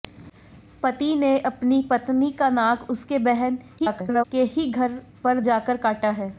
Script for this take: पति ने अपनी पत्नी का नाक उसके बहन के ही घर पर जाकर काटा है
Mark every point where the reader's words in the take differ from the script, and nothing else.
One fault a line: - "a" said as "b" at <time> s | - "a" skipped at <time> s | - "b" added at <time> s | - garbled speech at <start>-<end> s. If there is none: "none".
- garbled speech at 3.8-4.2 s